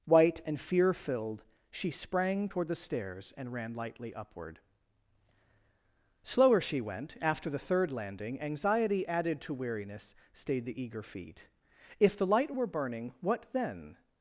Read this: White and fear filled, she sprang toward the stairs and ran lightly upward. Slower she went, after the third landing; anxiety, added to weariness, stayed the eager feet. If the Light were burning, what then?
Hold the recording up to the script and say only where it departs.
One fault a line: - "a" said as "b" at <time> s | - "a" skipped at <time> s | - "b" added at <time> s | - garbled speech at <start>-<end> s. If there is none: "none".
none